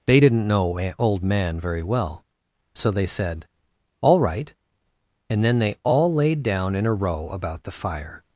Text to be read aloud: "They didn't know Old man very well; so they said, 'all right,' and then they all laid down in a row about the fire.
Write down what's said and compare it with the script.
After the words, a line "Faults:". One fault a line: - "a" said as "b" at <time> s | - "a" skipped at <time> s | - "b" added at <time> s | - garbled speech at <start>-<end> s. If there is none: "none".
"They didn't know Old man very well; so they said, 'all right,' and then they all laid down in a row about the fire.
Faults:
none